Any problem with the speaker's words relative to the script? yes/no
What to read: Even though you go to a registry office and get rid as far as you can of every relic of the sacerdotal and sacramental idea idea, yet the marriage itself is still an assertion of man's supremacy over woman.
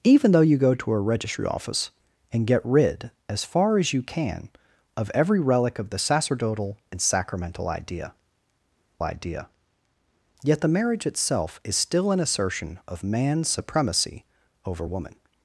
no